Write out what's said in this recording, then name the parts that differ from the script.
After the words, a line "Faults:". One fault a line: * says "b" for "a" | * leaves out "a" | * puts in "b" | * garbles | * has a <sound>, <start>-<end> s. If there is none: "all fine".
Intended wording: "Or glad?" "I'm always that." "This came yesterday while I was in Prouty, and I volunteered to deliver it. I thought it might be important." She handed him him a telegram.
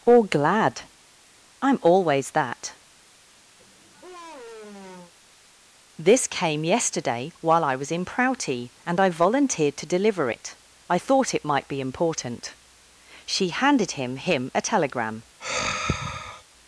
"Or glad?" "I'm always that." "This came yesterday while I was in Prouty, and I volunteered to deliver it. I thought it might be important." She handed him him a telegram.
Faults:
* has a sigh, 3.6-5.1 s
* has a sigh, 15.4-16.4 s